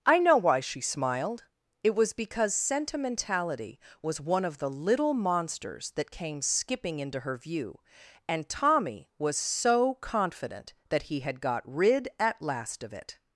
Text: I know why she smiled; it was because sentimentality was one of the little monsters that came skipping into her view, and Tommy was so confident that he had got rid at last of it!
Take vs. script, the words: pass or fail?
pass